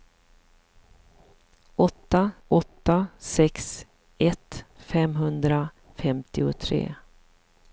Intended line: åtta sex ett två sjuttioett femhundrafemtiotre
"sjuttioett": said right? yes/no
no